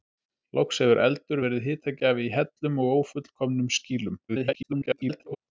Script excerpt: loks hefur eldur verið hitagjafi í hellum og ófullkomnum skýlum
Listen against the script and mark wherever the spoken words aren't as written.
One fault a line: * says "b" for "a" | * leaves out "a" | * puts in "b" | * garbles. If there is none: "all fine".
* garbles